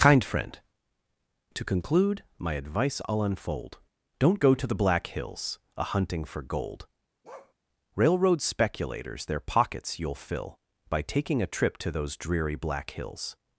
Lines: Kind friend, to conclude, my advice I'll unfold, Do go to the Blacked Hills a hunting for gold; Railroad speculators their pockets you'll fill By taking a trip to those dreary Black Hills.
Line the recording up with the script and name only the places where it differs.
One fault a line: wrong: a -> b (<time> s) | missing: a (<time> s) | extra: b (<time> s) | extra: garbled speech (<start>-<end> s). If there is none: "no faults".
wrong: Do -> Don't (4.2 s)
wrong: Blacked -> Black (4.7 s)